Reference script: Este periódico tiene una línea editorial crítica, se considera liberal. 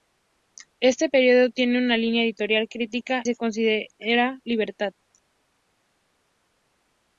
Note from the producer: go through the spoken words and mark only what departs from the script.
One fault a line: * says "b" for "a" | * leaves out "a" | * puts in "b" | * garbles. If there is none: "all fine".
all fine